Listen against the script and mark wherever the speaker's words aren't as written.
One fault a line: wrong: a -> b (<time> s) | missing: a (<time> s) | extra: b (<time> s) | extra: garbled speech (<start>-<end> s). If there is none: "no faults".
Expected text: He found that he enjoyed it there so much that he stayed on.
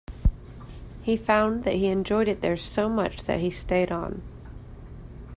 no faults